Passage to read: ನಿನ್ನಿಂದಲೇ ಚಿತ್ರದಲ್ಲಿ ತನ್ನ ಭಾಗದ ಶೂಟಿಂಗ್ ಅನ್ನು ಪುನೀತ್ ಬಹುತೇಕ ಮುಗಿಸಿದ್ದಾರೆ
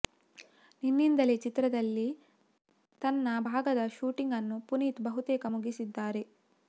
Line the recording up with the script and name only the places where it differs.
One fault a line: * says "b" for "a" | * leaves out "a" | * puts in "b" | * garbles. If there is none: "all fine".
all fine